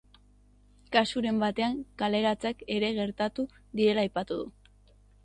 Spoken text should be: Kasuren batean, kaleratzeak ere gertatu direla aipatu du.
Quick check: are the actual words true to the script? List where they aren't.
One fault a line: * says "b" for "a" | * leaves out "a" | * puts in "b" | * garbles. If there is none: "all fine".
all fine